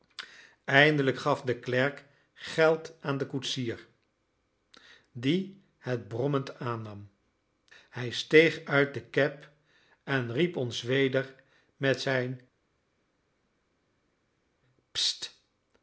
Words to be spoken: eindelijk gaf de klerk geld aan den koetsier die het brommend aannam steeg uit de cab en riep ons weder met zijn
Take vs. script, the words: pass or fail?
fail